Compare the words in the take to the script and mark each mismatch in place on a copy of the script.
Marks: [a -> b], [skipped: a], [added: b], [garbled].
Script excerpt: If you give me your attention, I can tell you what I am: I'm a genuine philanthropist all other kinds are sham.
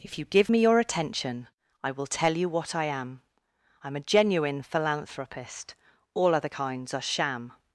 If you give me your attention, I [can -> will] tell you what I am: I'm a genuine philanthropist all other kinds are sham.